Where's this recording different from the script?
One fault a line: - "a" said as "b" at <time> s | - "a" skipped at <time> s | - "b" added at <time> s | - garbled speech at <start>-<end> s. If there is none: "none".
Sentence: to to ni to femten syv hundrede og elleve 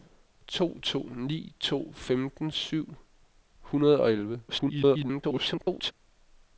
- garbled speech at 4.5-5.9 s